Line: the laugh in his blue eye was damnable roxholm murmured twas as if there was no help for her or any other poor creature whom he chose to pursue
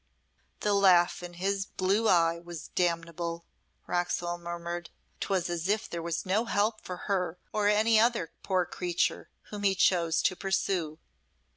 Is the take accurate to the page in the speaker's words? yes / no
yes